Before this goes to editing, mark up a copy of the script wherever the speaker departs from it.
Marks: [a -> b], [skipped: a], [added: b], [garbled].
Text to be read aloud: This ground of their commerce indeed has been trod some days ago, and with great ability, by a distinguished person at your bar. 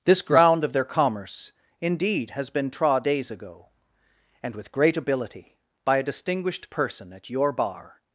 This ground of their commerce indeed has been trod [skipped: some] days ago, and with great ability, by a distinguished person at your bar.